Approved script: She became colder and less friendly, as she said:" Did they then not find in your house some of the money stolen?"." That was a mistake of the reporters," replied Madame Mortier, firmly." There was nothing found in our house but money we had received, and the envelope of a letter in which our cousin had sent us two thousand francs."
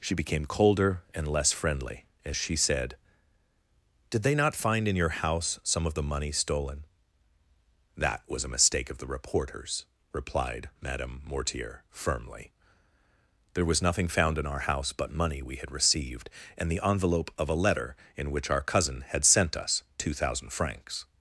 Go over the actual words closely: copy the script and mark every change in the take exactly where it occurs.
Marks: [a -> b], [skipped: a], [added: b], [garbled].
She became colder and less friendly, as she said:" Did they [skipped: then] not find in your house some of the money stolen?"." That was a mistake of the reporters," replied Madame Mortier, firmly." There was nothing found in our house but money we had received, and the envelope of a letter in which our cousin had sent us two thousand francs."